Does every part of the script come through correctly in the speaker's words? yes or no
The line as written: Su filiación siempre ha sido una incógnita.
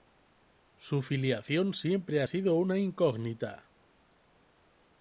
yes